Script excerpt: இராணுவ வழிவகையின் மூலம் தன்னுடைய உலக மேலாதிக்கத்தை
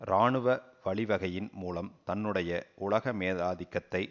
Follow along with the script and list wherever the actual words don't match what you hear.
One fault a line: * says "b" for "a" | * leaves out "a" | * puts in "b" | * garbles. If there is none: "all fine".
all fine